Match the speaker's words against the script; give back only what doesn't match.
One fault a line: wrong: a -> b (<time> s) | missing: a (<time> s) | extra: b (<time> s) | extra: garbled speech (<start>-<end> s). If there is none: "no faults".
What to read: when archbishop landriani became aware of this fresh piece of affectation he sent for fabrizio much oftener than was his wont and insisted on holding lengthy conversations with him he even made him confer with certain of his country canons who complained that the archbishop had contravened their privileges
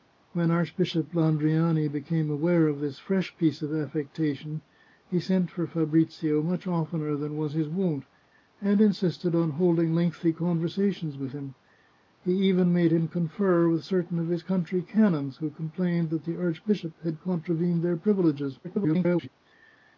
extra: garbled speech (18.6-19.3 s)